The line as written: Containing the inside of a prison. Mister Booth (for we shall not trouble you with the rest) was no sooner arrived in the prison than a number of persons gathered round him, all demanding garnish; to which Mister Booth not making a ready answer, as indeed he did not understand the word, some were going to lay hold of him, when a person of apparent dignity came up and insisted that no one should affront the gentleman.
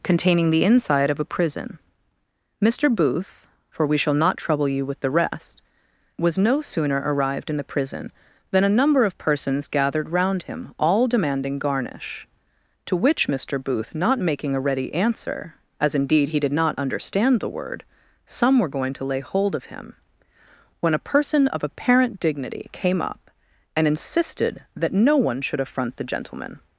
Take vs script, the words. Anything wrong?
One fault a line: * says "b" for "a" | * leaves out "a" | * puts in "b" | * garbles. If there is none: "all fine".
all fine